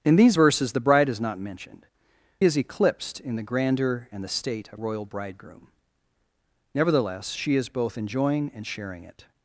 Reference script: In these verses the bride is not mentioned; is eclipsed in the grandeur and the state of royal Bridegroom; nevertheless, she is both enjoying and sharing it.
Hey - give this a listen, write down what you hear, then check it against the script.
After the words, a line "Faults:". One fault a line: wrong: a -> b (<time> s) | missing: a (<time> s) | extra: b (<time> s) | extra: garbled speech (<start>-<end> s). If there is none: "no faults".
In these verses the bride is not mentioned; is eclipsed in the grandeur and the state of royal Bridegroom; nevertheless, she is both enjoying and sharing it.
Faults:
no faults